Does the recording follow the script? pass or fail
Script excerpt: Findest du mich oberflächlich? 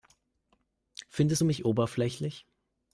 pass